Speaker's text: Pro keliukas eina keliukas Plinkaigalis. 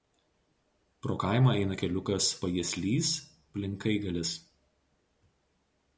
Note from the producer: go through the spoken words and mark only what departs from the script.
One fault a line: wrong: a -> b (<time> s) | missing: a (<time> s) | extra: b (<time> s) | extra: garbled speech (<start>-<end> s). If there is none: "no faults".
wrong: keliukas -> kaimą (1.2 s)
extra: Pajieslys (2.4 s)